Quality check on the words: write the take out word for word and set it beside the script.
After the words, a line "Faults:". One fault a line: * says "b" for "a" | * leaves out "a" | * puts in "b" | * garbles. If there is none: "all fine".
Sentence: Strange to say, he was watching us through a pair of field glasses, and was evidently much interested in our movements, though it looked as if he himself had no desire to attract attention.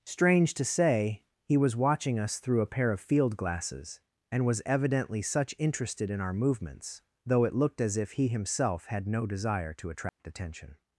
Strange to say, he was watching us through a pair of field glasses, and was evidently such interested in our movements, though it looked as if he himself had no desire to attract attention.
Faults:
* says "such" for "much"